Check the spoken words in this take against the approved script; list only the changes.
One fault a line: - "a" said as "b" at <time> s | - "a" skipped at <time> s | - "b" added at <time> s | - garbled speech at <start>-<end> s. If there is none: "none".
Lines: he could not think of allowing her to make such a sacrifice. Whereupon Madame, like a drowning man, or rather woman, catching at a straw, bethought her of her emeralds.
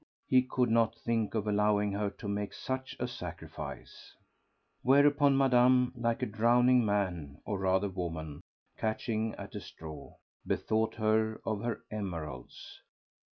none